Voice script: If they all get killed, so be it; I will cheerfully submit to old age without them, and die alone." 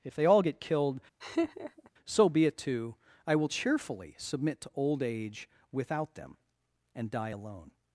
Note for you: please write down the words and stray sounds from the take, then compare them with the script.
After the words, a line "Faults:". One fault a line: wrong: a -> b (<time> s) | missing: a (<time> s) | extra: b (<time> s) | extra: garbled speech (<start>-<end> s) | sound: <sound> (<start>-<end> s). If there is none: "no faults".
If they all get killed, so be it; too I will cheerfully submit to old age without them, and die alone."
Faults:
sound: laugh (1.2-1.9 s)
extra: too (2.6 s)